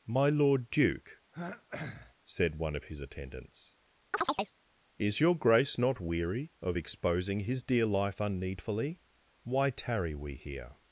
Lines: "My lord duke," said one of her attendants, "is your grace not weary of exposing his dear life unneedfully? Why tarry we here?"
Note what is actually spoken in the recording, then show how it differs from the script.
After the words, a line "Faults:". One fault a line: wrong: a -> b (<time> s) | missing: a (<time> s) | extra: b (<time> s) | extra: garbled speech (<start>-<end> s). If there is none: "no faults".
"My lord duke," said one of his attendants, "is your grace not weary of exposing his dear life unneedfully? Why tarry we here?"
Faults:
wrong: her -> his (2.8 s)